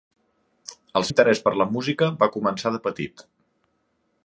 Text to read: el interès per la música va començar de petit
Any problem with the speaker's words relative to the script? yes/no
no